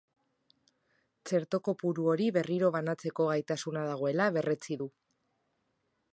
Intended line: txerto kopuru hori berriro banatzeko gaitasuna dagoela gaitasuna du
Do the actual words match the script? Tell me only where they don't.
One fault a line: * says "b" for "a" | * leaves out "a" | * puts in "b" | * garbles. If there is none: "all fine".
* says "berretsi" for "gaitasuna"